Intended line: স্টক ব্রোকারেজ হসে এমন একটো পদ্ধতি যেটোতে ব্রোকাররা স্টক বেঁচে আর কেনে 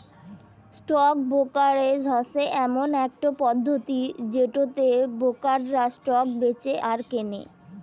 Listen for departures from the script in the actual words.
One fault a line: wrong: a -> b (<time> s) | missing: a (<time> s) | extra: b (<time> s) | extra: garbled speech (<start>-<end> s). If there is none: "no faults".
no faults